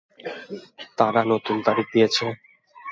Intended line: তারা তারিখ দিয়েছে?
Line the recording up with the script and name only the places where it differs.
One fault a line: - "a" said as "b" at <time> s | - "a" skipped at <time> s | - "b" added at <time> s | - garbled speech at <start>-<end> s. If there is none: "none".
- "নতুন" added at 1.3 s